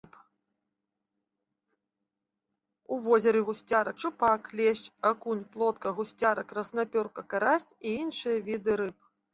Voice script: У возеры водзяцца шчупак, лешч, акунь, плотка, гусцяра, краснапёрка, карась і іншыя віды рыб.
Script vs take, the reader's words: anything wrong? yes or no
yes